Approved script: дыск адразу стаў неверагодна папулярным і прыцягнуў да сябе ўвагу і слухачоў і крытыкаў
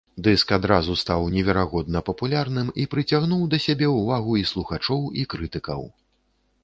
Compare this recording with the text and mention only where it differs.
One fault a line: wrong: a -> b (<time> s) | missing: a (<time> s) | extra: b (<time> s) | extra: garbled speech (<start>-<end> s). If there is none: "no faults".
no faults